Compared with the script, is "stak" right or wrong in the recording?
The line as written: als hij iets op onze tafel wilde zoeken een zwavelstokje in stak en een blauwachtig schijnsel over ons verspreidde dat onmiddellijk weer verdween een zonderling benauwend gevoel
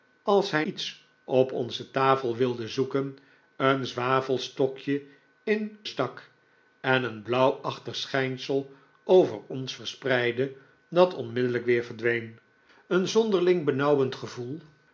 right